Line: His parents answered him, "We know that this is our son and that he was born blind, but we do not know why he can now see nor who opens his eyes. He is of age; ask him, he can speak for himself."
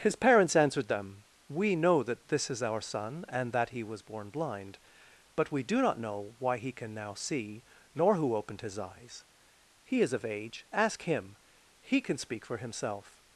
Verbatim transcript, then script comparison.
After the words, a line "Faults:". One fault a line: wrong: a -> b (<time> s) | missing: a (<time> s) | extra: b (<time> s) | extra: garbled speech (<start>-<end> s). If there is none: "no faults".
His parents answered them, "We know that this is our son and that he was born blind, but we do not know why he can now see nor who opened his eyes. He is of age; ask him, he can speak for himself."
Faults:
wrong: him -> them (0.9 s)
wrong: opens -> opened (8.3 s)